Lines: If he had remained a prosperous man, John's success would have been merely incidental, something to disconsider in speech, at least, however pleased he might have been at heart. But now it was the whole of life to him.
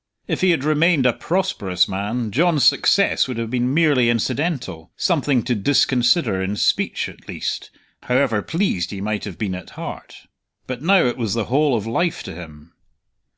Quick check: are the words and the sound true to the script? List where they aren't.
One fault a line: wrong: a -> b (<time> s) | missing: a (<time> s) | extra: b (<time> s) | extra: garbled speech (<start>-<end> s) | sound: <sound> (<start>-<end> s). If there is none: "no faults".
no faults